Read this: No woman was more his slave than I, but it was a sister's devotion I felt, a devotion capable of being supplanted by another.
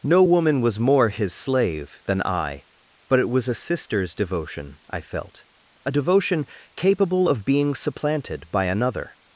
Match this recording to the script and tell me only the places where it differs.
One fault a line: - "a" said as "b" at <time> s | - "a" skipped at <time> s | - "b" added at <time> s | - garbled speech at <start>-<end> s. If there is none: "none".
none